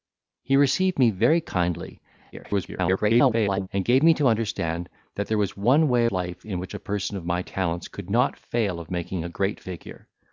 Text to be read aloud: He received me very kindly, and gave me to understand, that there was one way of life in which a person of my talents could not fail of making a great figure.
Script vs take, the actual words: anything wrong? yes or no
yes